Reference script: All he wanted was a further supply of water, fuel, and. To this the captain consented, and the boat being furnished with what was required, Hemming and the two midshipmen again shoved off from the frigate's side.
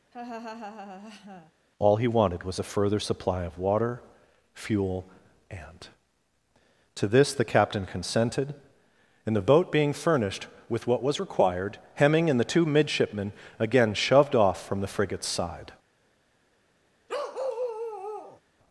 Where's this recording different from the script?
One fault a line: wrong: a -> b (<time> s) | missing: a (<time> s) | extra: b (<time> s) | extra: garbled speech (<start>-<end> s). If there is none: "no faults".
no faults